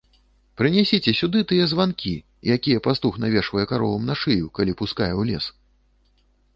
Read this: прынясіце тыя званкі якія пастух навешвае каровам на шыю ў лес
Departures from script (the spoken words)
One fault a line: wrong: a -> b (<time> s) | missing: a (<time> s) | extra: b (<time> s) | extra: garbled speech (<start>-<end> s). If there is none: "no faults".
extra: сюды (1.2 s)
extra: калі пускае (4.6 s)